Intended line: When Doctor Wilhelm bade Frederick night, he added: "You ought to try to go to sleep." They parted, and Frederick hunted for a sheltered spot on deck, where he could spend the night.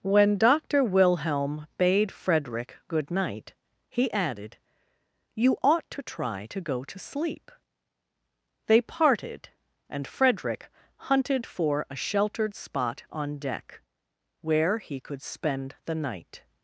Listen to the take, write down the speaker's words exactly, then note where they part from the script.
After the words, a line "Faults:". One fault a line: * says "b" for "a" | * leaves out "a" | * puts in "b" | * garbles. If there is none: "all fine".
When Doctor Wilhelm bade Frederick good night, he added: "You ought to try to go to sleep." They parted, and Frederick hunted for a sheltered spot on deck, where he could spend the night.
Faults:
* puts in "good"